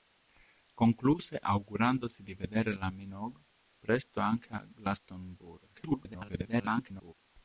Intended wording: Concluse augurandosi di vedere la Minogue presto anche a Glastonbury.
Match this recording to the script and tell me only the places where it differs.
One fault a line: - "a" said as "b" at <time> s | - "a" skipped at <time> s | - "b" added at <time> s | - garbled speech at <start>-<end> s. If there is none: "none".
- garbled speech at 5.7-7.1 s